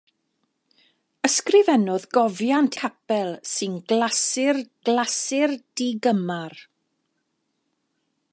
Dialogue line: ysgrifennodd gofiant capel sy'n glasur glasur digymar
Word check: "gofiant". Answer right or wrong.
right